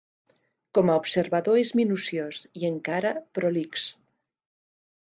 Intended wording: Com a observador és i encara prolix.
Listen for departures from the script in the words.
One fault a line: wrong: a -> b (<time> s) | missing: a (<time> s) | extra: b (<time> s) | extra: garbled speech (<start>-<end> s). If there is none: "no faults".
extra: minuciós (1.8 s)